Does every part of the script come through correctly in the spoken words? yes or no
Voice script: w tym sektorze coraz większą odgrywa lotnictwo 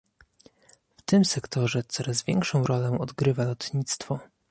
no